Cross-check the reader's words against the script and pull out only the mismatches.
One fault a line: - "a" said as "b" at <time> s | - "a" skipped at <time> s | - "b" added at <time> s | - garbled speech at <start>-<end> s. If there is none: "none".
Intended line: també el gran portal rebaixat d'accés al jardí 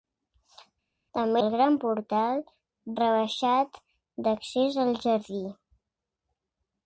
none